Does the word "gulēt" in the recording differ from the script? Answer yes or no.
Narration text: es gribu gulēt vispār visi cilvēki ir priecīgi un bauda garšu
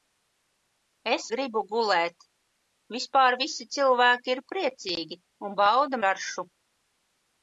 no